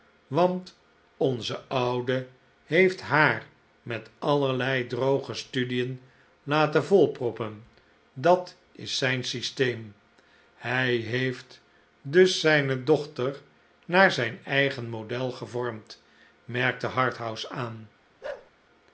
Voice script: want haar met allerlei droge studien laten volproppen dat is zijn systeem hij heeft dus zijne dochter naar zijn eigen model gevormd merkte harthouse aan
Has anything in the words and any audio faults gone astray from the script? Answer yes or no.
yes